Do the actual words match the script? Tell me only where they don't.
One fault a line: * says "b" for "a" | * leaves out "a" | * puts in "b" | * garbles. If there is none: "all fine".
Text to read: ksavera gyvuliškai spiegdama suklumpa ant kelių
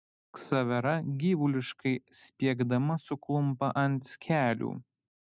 all fine